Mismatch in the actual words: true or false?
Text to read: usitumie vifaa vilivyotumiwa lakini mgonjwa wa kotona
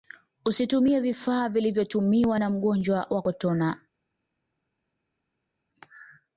true